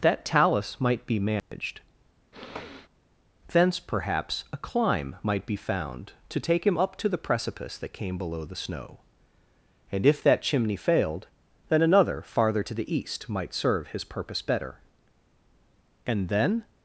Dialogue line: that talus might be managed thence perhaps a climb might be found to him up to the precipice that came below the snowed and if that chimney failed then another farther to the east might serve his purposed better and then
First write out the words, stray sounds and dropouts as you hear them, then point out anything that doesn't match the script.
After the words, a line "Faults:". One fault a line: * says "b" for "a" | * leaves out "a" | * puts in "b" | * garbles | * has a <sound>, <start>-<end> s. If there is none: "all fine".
that talus might be managed thence perhaps a climb might be found to take him up to the precipice that came below the snow and if that chimney failed then another farther to the east might serve his purpose better and then
Faults:
* has a dropout, 1.4-1.5 s
* has a sniff, 2.3-2.9 s
* puts in "take"
* says "snow" for "snowed"
* says "purpose" for "purposed"